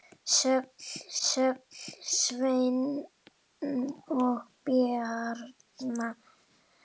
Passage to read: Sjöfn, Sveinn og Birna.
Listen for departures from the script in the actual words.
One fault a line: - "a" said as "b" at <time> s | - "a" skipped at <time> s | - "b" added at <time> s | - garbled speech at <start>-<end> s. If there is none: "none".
- "sjöfn" added at 1.3 s